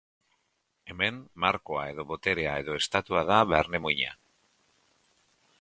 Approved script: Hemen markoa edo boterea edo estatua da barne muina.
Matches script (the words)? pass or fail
pass